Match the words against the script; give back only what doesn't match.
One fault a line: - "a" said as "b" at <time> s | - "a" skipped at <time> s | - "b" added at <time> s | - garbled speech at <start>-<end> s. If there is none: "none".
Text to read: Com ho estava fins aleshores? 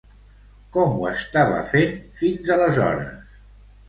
- "fent" added at 1.7 s